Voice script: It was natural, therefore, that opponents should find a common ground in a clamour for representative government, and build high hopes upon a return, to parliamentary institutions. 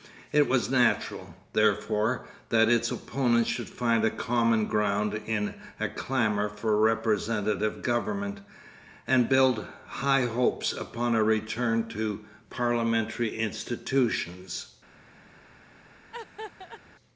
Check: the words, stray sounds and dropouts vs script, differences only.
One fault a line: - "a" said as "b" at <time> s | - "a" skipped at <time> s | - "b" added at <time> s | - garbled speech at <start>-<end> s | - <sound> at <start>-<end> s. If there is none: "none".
- "its" added at 2.7 s
- laugh at 16.1-16.8 s